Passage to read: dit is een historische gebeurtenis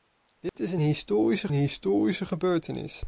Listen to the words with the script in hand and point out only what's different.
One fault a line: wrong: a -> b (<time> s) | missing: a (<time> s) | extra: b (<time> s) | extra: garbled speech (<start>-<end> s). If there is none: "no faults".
extra: historische (1.5 s)